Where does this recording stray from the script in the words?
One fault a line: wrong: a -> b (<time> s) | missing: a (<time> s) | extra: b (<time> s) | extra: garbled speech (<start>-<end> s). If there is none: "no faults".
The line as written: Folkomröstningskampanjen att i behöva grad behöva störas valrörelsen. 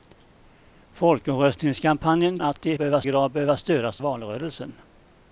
no faults